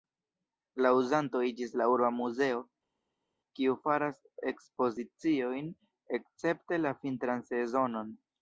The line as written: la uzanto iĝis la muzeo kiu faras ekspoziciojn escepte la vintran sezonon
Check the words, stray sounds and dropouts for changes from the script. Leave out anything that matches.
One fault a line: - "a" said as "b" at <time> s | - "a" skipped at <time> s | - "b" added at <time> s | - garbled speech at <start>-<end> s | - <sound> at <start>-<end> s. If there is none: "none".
- "urba" added at 1.9 s